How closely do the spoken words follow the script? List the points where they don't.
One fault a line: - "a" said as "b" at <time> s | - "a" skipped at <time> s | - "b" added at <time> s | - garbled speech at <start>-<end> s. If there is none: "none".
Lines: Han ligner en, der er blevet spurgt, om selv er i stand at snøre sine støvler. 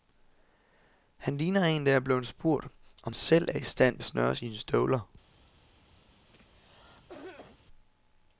none